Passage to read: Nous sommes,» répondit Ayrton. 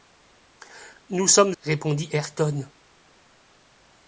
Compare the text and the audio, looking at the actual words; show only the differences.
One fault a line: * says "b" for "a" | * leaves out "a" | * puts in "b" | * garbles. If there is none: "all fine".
all fine